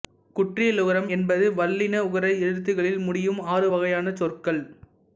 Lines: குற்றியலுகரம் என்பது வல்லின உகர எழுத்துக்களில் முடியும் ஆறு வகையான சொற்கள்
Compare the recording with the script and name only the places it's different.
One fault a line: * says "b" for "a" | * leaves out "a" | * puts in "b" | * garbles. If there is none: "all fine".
all fine